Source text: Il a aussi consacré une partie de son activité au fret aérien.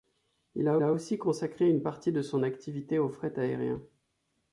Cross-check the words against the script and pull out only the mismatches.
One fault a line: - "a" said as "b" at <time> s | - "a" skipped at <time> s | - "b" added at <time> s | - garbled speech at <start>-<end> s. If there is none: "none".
- "a" added at 0.8 s